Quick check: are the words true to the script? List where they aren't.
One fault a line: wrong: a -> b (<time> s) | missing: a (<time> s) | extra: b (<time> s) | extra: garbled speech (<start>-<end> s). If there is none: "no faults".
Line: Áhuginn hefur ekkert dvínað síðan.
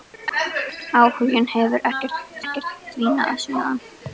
extra: ekkert (2.4 s)